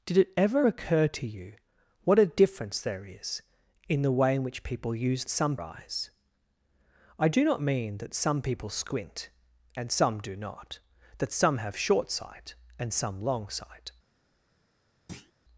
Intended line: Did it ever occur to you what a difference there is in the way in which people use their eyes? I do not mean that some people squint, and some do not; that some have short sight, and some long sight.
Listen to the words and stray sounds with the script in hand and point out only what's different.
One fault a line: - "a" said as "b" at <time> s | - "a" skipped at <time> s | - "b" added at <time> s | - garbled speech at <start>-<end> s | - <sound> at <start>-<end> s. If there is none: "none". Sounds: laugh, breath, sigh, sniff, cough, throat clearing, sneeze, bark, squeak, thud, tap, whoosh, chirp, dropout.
- "their" said as "some" at 5.3 s
- thud at 15.1-15.3 s